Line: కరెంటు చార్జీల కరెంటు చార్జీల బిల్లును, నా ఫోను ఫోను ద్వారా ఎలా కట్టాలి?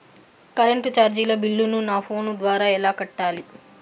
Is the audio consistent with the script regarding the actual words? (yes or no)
no